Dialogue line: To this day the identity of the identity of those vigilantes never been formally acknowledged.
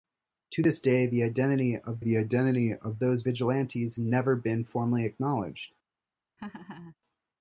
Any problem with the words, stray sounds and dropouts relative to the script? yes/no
yes